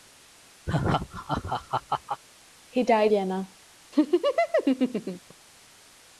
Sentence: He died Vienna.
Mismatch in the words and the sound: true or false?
true